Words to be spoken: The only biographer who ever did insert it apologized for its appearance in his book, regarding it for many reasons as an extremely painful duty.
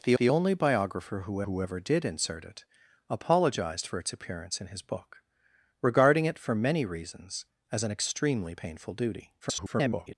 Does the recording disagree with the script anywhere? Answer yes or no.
yes